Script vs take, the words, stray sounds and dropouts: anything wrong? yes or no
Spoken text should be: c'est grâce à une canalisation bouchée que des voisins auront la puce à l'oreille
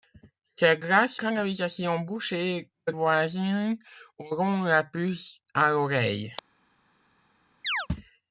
yes